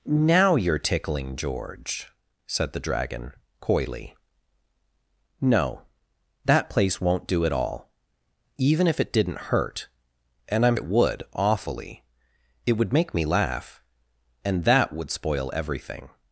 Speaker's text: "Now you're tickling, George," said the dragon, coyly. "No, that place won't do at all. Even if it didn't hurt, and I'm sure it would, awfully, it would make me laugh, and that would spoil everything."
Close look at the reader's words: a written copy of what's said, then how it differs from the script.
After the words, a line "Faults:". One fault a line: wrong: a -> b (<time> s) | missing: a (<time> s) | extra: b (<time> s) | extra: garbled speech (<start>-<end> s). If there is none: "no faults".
"Now you're tickling, George," said the dragon, coyly. "No, that place won't do at all. Even if it didn't hurt, and I'm it would, awfully, it would make me laugh, and that would spoil everything."
Faults:
missing: sure (10.8 s)